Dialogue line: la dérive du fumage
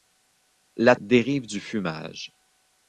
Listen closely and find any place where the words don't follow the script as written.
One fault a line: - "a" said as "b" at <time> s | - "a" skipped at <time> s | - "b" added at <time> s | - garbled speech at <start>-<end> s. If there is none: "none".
none